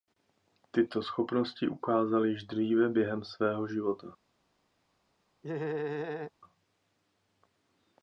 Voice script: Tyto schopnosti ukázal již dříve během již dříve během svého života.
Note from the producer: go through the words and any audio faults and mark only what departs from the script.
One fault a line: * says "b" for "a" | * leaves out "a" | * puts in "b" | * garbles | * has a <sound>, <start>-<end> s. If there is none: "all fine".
* leaves out "již dříve během"
* has a laugh, 5.4-6.3 s